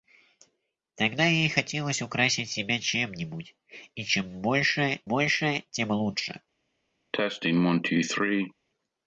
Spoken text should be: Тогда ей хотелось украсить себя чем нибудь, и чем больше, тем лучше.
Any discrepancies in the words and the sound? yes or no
yes